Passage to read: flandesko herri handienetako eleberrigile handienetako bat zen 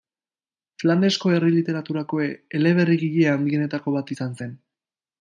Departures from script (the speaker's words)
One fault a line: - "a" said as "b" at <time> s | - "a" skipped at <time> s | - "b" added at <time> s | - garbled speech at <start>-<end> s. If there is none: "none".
- "handienetako" said as "literaturako" at 1.6 s
- "izan" added at 4.1 s